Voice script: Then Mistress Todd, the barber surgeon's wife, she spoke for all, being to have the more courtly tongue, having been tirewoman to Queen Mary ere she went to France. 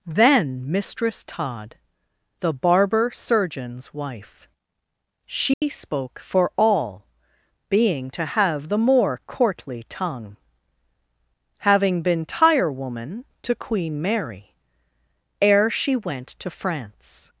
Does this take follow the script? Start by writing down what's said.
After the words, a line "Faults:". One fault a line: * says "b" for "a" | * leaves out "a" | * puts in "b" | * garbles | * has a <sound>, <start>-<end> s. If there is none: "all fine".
Then Mistress Todd, the barber surgeon's wife, she spoke for all, being to have the more courtly tongue, having been tirewoman to Queen Mary ere she went to France.
Faults:
* has a dropout, 5.5-5.6 s